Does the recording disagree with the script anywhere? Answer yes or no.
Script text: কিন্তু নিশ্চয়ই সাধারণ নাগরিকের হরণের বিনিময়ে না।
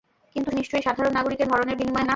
no